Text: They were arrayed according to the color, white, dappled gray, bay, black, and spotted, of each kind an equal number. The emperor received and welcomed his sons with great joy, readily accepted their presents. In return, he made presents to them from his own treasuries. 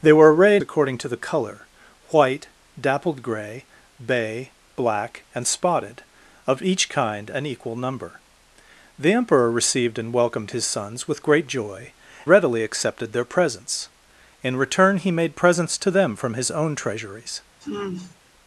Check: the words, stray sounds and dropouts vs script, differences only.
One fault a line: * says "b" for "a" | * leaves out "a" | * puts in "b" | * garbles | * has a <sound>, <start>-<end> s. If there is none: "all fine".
* has a sigh, 17.6-18.2 s